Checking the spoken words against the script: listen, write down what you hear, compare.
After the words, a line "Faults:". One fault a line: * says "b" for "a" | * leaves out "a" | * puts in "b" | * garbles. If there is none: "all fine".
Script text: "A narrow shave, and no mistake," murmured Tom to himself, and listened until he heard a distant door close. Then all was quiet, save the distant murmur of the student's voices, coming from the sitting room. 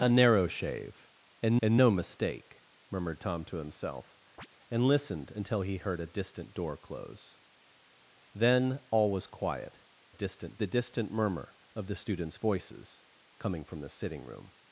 "A narrow shave, and and no mistake," murmured Tom to himself, and listened until he heard a distant door close. Then all was quiet, distant the distant murmur of the student's voices, coming from the sitting room.
Faults:
* puts in "and"
* says "distant" for "save"